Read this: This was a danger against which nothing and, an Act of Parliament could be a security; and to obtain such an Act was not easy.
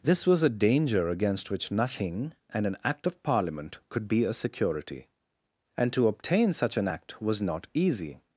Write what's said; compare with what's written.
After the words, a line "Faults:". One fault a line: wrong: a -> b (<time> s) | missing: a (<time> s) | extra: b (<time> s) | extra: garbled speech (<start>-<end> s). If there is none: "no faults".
This was a danger against which nothing and, an Act of Parliament could be a security; and to obtain such an Act was not easy.
Faults:
no faults